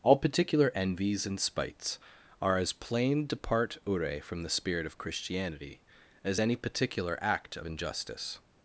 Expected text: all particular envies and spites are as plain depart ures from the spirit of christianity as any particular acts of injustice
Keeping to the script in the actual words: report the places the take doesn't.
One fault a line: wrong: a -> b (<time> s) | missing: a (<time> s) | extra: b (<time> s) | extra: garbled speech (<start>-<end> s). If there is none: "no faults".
wrong: ures -> ure (3.9 s)
wrong: acts -> act (7.2 s)